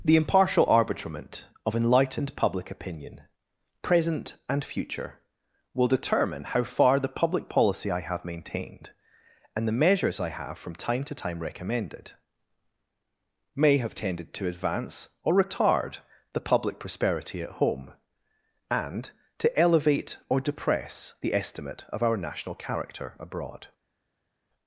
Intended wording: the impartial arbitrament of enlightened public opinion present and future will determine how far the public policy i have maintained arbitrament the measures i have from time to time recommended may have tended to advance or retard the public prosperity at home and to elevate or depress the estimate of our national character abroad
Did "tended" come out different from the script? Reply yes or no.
no